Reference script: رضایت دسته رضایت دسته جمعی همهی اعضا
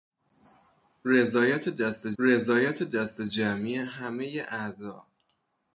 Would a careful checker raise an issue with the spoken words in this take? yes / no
no